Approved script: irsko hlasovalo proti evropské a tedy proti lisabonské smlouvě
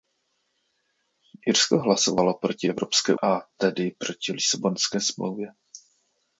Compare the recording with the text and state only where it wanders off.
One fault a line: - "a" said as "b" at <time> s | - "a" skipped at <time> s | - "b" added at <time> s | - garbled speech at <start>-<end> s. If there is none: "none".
none